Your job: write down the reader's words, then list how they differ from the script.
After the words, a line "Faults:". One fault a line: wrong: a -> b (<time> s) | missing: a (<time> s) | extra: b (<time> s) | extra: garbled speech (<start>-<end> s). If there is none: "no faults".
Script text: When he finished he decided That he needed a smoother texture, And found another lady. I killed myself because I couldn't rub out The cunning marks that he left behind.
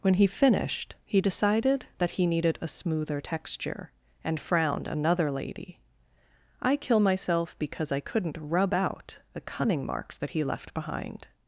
When he finished he decided That he needed a smoother texture, And frowned another lady. I kill myself because I couldn't rub out The cunning marks that he left behind.
Faults:
wrong: found -> frowned (4.4 s)
wrong: killed -> kill (6.7 s)